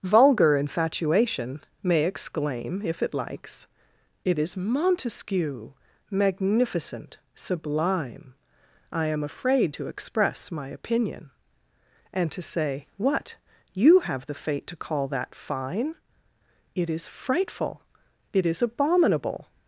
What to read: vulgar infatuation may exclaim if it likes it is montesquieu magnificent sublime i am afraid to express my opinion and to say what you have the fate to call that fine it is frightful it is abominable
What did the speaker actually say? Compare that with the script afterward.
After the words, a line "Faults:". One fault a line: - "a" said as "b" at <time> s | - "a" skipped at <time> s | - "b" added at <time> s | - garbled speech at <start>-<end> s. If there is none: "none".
vulgar infatuation may exclaim if it likes it is montesquieu magnificent sublime i am afraid to express my opinion and to say what you have the fate to call that fine it is frightful it is abominable
Faults:
none